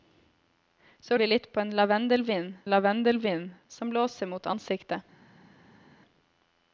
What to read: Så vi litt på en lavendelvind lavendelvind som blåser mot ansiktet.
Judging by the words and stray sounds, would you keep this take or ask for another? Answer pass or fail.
pass